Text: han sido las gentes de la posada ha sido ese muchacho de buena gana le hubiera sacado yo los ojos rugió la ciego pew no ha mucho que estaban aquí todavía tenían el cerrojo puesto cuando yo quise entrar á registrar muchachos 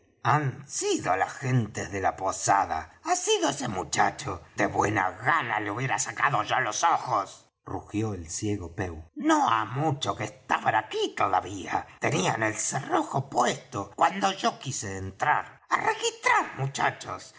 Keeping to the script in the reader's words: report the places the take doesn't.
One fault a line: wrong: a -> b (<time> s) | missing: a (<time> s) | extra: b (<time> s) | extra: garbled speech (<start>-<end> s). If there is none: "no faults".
wrong: la -> el (8.1 s)